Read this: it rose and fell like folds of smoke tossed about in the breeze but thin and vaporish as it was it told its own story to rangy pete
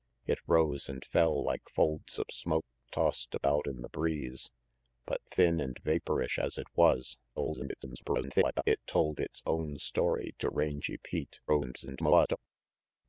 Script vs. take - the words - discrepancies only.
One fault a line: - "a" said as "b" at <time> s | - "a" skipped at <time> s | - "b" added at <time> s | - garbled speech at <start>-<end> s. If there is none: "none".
- garbled speech at 7.4-8.6 s
- garbled speech at 11.5-12.4 s